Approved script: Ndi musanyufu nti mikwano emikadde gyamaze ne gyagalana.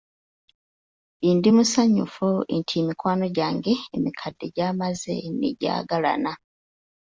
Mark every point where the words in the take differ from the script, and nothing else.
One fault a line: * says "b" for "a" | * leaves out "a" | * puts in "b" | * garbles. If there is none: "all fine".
* puts in "gyange"